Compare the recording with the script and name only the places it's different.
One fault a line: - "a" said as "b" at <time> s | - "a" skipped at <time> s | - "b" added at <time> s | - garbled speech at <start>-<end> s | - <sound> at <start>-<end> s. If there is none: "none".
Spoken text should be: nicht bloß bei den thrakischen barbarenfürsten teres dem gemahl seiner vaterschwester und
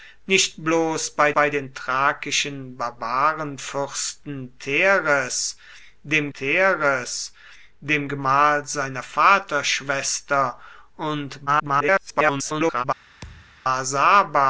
- "bei" added at 1.3 s
- "teres dem" added at 6.3 s
- garbled speech at 11.5-12.8 s
- thud at 13.2-13.6 s